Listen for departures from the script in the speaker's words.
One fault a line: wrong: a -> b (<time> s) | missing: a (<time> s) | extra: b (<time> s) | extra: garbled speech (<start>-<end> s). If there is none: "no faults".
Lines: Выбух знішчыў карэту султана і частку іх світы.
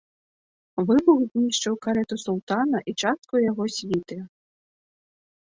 wrong: іх -> яго (3.5 s)